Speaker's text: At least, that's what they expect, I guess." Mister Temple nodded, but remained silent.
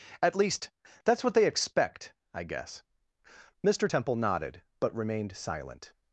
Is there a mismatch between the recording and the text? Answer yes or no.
no